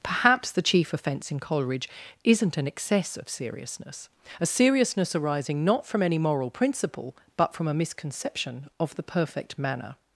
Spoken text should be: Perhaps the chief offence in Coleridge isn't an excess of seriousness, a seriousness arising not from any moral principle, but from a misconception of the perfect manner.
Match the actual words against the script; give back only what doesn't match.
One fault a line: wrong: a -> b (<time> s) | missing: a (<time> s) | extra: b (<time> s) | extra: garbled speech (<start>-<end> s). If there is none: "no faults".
no faults